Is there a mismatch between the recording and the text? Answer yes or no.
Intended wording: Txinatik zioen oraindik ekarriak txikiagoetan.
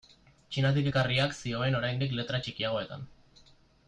yes